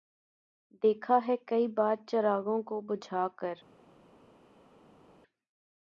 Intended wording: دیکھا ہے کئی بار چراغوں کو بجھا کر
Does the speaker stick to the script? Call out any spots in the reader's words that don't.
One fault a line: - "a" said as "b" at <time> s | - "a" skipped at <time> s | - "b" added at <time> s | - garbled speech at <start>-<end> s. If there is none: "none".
none